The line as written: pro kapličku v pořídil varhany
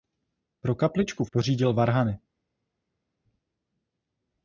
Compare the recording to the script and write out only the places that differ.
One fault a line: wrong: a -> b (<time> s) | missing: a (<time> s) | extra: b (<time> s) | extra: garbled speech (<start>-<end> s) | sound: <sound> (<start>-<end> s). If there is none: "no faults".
no faults